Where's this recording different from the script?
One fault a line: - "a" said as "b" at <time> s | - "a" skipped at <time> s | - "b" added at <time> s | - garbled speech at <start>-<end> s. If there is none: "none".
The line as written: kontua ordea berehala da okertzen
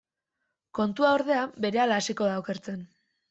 - "hasiko" added at 2.0 s